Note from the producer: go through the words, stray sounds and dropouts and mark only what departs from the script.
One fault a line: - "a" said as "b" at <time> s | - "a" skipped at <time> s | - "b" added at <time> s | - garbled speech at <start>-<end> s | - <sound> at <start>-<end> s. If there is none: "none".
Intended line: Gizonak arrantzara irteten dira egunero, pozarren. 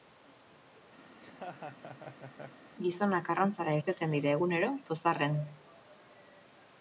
- laugh at 1.1-2.6 s